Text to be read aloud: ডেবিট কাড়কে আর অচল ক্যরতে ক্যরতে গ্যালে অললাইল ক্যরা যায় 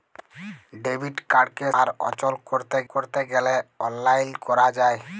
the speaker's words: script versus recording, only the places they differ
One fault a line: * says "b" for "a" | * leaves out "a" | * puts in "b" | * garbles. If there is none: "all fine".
all fine